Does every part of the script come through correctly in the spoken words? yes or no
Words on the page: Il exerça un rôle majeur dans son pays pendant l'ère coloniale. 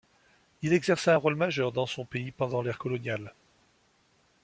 yes